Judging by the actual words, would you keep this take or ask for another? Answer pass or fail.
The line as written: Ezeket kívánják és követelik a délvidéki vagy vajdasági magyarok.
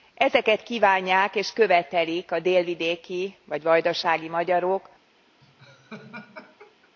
pass